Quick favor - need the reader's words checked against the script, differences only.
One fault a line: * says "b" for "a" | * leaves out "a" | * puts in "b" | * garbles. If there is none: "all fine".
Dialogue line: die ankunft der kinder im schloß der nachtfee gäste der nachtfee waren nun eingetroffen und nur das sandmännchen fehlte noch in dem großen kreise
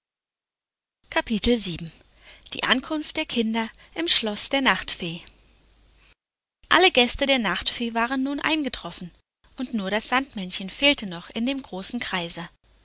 * puts in "alle"